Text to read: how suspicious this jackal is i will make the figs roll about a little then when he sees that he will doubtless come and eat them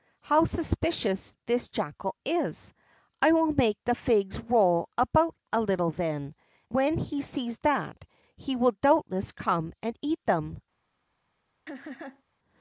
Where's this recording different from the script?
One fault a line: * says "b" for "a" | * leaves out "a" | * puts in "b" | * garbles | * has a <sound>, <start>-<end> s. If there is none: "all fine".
* has a laugh, 11.7-12.2 s